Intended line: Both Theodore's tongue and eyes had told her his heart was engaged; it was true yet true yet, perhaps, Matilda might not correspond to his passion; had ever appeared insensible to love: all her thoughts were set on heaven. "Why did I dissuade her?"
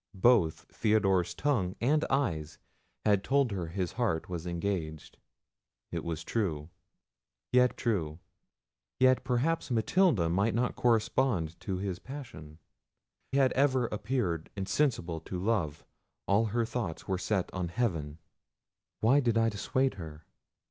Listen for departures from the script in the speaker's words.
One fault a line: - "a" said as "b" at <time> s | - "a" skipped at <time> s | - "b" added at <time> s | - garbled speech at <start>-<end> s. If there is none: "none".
none